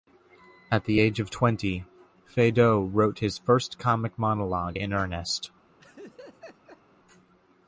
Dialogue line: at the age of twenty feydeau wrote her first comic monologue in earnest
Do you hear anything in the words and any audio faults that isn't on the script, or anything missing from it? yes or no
yes